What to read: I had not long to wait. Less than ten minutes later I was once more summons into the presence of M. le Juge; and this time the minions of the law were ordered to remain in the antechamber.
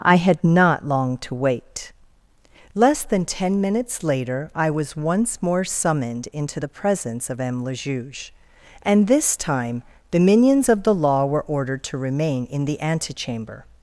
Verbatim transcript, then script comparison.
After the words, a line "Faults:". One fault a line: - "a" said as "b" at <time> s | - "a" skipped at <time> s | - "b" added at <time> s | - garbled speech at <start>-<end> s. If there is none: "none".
I had not long to wait. Less than ten minutes later I was once more summoned into the presence of M. le Juge; and this time the minions of the law were ordered to remain in the antechamber.
Faults:
- "summons" said as "summoned" at 5.6 s